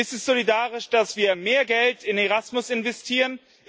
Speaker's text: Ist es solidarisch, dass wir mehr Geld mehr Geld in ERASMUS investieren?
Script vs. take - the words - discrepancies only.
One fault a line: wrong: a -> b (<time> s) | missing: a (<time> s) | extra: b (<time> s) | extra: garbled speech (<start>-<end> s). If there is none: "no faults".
missing: mehr Geld (2.0 s)